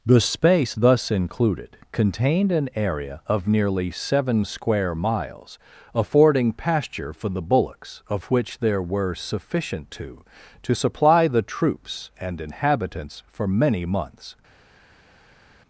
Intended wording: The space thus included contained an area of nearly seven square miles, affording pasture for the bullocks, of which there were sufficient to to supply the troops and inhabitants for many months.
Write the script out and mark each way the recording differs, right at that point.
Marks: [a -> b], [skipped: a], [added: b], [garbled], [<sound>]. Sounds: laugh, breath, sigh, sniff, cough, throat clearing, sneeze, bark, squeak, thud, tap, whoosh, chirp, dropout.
The space thus included contained an area of nearly seven square miles, affording pasture for the bullocks, of which there were sufficient to to supply the troops and inhabitants for many months.